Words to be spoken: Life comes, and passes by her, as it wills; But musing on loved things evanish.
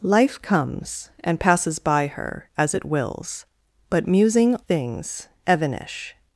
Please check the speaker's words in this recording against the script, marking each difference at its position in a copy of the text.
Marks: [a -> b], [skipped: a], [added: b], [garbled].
Life comes, and passes by her, as it wills; But musing [skipped: on loved] things evanish.